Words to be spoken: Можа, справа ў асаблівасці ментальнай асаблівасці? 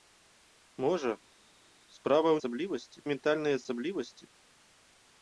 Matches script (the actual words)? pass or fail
pass